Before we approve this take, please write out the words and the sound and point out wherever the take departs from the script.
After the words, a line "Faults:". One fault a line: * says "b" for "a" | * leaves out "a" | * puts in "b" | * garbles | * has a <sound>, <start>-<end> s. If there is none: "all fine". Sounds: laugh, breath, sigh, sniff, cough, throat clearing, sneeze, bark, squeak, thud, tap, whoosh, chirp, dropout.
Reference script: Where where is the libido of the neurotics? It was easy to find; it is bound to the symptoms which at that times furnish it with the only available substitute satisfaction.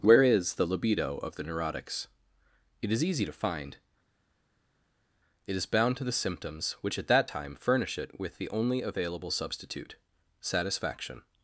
Where is the libido of the neurotics? It is easy to find; it is bound to the symptoms which at that time furnish it with the only available substitute satisfaction.
Faults:
* leaves out "where"
* says "is" for "was"
* says "time" for "times"